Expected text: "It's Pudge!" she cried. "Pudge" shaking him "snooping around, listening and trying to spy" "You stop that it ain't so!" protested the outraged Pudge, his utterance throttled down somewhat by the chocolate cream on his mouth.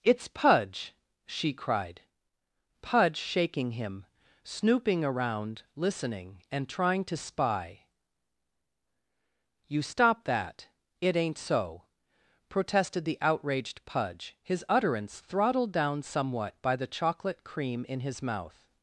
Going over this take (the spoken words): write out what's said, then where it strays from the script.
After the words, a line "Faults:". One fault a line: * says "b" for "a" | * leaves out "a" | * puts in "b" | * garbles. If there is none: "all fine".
"It's Pudge!" she cried. "Pudge" shaking him "snooping around, listening and trying to spy" "You stop that it ain't so!" protested the outraged Pudge, his utterance throttled down somewhat by the chocolate cream in his mouth.
Faults:
* says "in" for "on"